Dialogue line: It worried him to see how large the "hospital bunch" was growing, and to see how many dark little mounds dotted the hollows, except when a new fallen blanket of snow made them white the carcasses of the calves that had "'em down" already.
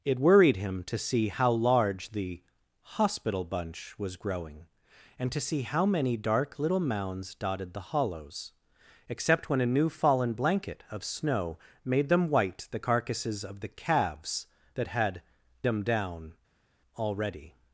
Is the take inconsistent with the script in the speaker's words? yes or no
no